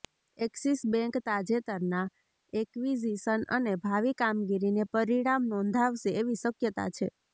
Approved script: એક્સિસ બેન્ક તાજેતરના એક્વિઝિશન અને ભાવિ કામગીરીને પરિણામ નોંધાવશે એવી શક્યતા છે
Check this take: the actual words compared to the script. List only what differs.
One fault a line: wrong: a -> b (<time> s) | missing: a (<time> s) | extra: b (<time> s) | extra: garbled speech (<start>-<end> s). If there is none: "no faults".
no faults